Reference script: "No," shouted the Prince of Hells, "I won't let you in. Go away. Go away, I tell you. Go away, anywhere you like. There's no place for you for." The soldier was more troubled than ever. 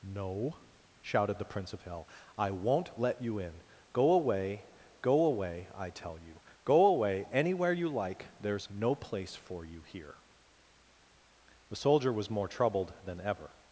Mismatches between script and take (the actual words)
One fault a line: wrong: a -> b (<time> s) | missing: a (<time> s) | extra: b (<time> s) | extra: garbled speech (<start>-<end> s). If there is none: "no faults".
wrong: Hells -> Hell (1.8 s)
wrong: for -> here (9.8 s)